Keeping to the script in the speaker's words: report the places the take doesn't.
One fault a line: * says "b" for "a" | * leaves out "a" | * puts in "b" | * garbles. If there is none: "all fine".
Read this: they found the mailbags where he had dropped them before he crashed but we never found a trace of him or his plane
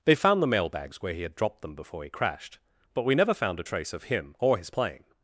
all fine